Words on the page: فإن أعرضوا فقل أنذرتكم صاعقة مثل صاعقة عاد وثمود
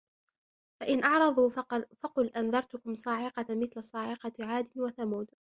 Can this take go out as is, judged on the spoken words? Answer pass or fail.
pass